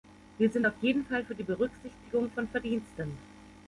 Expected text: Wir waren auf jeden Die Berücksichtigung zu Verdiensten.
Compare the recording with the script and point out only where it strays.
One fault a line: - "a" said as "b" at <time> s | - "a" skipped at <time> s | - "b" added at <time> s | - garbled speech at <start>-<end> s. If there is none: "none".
- "waren" said as "sind" at 0.5 s
- "Fall für" added at 1.0 s
- "zu" said as "von" at 2.3 s